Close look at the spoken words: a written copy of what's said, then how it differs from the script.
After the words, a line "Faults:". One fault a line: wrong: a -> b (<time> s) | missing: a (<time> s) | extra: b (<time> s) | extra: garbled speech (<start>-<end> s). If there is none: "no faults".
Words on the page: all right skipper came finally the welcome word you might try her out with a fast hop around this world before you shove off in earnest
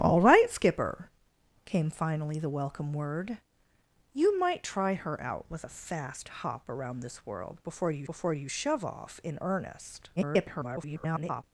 all right skipper came finally the welcome word you might try her out with a fast hop around this world before you before you shove off in earnest [garbled]
Faults:
extra: before you (8.0 s)
extra: garbled speech (10.2-11.4 s)